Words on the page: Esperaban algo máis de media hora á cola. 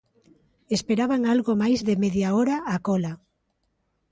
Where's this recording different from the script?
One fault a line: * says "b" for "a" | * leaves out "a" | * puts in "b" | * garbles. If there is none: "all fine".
all fine